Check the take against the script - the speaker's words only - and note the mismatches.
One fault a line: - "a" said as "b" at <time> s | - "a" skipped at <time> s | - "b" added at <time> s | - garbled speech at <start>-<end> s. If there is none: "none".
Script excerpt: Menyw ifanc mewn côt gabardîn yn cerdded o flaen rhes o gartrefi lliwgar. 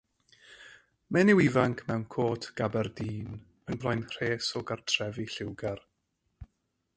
- "cerdded" skipped at 3.8 s